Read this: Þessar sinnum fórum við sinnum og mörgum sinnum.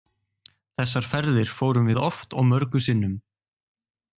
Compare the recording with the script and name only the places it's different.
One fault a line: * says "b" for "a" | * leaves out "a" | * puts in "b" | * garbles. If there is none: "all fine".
* says "ferðir" for "sinnum"
* says "oft" for "sinnum"